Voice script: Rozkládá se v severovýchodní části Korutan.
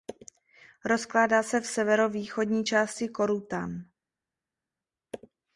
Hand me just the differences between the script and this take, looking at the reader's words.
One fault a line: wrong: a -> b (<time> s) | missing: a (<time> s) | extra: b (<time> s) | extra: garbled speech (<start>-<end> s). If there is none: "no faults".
no faults